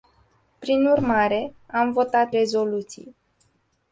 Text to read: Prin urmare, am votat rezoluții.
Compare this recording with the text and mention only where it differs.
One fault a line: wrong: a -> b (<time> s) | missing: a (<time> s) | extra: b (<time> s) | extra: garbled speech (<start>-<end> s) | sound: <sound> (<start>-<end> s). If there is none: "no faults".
no faults